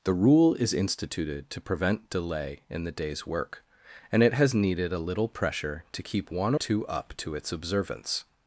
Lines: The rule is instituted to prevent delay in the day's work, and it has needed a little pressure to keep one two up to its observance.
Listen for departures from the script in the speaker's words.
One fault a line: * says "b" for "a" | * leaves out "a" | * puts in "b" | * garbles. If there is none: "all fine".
all fine